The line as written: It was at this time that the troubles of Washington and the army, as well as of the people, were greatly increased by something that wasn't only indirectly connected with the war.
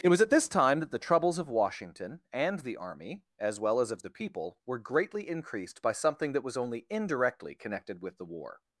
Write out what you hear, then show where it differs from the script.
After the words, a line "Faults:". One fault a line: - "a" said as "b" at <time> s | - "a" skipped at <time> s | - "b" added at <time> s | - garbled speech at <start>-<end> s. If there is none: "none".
It was at this time that the troubles of Washington and the army, as well as of the people, were greatly increased by something that was only indirectly connected with the war.
Faults:
- "wasn't" said as "was" at 6.4 s